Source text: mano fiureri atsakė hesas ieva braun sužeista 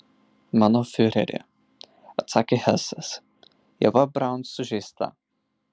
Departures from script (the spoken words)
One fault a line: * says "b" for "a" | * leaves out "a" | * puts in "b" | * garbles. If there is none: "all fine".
all fine